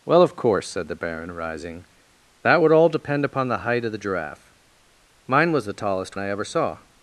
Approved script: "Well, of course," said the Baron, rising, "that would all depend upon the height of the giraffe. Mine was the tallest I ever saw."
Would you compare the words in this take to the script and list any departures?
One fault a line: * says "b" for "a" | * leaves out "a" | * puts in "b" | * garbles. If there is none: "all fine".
all fine